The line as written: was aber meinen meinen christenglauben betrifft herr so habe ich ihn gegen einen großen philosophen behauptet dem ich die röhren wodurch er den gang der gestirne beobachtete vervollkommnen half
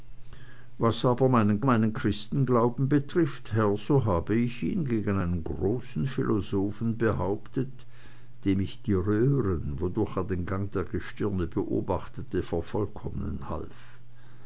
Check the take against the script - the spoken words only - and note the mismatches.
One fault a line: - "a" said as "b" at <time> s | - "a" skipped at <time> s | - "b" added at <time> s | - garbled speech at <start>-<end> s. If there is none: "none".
none